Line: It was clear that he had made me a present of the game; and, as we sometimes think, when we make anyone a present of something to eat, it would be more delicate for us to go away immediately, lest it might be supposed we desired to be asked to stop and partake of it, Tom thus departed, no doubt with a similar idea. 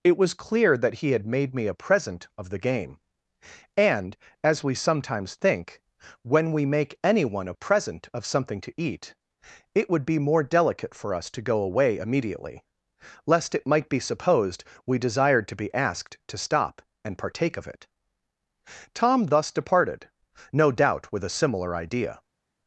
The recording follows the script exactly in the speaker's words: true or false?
true